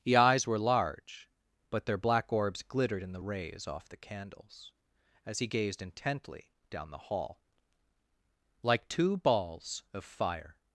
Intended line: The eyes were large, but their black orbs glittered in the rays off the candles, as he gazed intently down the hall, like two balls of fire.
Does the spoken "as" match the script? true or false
true